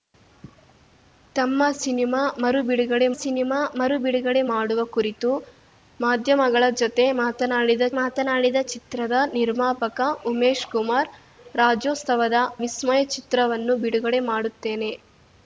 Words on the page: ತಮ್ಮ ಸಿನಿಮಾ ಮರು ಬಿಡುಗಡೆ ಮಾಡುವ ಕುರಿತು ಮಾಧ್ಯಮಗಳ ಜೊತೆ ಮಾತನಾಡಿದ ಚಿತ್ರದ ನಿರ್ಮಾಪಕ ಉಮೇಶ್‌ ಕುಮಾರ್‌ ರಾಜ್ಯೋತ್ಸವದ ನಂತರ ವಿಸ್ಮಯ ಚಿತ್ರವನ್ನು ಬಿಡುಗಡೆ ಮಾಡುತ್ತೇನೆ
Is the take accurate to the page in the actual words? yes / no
no